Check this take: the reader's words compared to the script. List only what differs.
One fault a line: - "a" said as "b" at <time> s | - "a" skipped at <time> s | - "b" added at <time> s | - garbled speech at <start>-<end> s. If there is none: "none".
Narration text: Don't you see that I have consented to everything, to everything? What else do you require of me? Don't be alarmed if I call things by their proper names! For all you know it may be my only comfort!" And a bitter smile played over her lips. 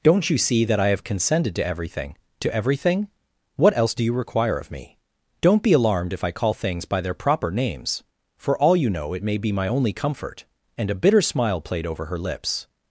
none